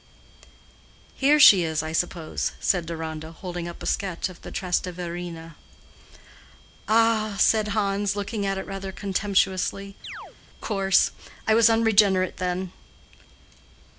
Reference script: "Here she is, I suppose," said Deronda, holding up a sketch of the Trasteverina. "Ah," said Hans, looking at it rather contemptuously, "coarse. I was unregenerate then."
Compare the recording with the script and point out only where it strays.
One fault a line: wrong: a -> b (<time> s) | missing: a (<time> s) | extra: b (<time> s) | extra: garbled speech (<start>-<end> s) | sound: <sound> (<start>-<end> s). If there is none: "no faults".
sound: chirp (10.0-10.4 s)